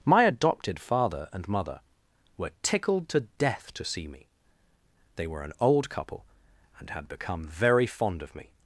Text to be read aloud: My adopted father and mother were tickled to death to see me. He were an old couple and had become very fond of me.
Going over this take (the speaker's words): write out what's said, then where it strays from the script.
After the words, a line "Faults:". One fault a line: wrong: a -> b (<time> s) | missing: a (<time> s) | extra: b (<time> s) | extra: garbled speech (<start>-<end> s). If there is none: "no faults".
My adopted father and mother were tickled to death to see me. They were an old couple and had become very fond of me.
Faults:
wrong: He -> They (5.2 s)